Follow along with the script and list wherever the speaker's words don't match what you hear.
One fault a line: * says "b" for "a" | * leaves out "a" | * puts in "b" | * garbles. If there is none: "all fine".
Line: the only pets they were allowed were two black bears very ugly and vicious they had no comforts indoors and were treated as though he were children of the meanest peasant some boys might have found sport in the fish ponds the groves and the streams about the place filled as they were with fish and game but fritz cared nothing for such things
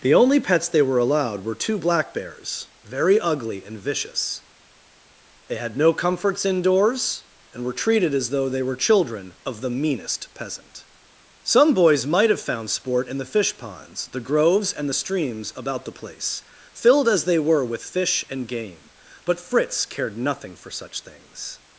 * says "they" for "he"